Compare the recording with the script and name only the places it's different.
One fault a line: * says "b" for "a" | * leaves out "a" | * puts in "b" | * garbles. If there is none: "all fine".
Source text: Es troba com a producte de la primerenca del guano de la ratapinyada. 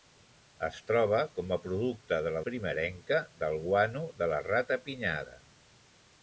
all fine